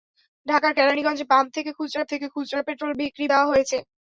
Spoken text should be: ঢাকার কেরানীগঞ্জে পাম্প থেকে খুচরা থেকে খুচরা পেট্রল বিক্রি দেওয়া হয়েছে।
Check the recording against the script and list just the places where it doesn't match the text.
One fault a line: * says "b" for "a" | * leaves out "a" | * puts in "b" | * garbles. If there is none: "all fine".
all fine